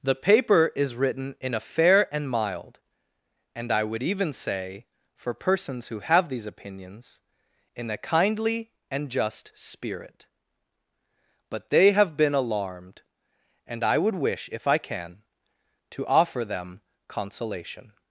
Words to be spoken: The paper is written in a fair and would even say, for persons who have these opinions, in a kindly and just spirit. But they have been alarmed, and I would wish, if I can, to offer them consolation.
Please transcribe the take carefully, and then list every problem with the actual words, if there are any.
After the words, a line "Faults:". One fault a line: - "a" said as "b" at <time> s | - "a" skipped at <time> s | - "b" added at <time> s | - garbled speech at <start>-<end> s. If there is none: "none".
The paper is written in a fair and mild, and I would even say, for persons who have these opinions, in a kindly and just spirit. But they have been alarmed, and I would wish, if I can, to offer them consolation.
Faults:
- "mild and I" added at 2.3 s